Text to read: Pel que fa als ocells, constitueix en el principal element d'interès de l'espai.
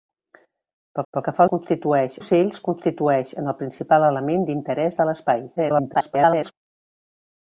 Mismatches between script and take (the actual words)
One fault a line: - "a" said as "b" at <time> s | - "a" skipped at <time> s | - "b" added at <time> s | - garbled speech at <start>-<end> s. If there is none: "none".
- "pel" added at 1.1 s
- "als" said as "constitueix" at 1.5 s
- garbled speech at 5.6-6.5 s